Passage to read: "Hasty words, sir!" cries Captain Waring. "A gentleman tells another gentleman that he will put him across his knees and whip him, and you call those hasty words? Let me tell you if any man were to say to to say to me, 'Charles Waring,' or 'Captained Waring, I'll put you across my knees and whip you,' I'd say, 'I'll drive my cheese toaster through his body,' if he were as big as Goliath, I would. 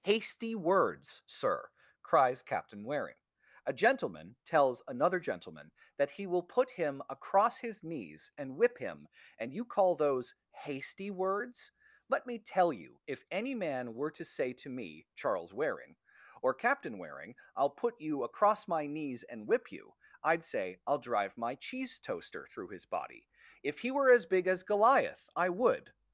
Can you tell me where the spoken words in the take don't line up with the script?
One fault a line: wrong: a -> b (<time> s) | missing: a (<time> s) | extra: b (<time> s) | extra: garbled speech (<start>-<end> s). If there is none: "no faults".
missing: to say to (14.7 s)
wrong: Captained -> Captain (16.6 s)